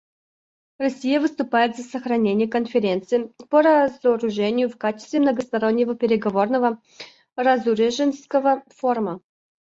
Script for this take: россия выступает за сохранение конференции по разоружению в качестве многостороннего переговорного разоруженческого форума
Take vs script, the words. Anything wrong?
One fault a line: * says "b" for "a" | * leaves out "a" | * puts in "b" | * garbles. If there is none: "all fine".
all fine